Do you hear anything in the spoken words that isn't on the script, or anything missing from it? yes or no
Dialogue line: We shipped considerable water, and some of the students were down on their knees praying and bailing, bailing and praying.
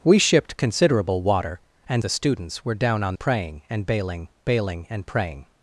yes